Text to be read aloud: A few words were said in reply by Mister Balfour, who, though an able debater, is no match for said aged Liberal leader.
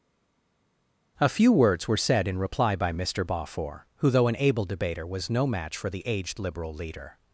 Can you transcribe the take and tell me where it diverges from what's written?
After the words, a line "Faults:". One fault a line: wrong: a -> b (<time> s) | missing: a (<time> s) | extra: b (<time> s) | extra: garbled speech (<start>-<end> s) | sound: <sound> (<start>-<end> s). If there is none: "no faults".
A few words were said in reply by Mister Balfour, who, though an able debater, was no match for the aged Liberal leader.
Faults:
wrong: is -> was (5.1 s)
wrong: said -> the (5.9 s)